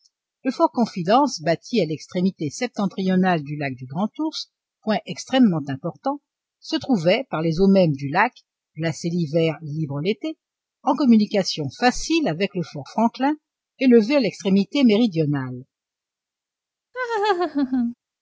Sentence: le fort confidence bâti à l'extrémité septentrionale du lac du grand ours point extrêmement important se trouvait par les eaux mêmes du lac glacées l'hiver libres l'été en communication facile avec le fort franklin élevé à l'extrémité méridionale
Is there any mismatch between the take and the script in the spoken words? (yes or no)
no